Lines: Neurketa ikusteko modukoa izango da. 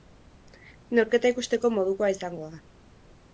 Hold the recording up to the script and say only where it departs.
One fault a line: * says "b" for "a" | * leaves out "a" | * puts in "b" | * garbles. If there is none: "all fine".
all fine